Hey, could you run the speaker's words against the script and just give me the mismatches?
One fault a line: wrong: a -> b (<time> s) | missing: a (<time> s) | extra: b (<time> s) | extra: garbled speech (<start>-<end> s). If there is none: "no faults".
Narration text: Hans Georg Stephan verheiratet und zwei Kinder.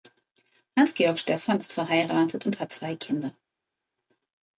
extra: ist (1.6 s)
extra: hat (2.6 s)